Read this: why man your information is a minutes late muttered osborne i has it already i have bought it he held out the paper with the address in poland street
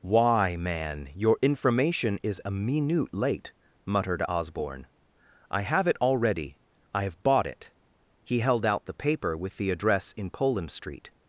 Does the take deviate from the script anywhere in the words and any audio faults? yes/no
yes